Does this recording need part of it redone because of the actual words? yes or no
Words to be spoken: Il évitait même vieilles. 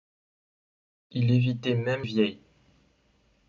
no